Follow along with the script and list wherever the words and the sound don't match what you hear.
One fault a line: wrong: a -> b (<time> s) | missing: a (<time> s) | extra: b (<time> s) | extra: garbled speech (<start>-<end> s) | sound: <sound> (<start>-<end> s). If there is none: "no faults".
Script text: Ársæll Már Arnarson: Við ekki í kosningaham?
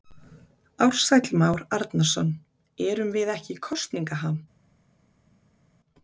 extra: Erum (2.9 s)